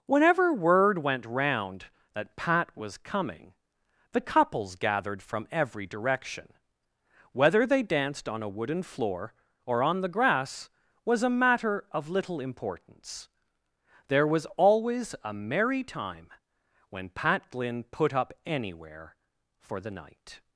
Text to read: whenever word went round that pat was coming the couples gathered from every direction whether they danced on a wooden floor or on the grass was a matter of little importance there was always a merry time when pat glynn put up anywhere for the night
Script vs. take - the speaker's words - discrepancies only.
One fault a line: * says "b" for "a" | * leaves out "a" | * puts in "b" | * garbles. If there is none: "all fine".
all fine